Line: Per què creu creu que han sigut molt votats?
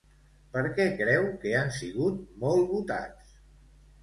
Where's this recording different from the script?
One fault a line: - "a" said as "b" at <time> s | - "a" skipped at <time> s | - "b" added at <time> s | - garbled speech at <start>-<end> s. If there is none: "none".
- "creu" skipped at 1.3 s